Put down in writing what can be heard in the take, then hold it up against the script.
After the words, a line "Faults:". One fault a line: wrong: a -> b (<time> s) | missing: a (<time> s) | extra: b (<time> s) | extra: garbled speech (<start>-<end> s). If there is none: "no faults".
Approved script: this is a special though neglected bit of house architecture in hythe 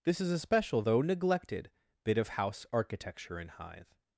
this is a special though neglected bit of house architecture in hythe
Faults:
no faults